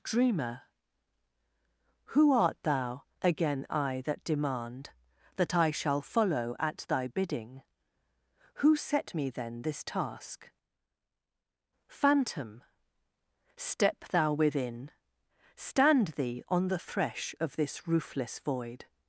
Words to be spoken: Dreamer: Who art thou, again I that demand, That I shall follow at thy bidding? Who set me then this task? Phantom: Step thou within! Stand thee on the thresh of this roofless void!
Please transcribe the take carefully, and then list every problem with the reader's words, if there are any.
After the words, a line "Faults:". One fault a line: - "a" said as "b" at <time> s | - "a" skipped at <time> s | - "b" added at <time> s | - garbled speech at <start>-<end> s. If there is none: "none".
Dreamer: Who art thou, again I that demand, That I shall follow at thy bidding? Who set me then this task? Phantom: Step thou within! Stand thee on the thresh of this roofless void!
Faults:
none